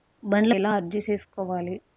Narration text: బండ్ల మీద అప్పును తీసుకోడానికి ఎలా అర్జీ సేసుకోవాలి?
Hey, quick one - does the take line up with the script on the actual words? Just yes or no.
no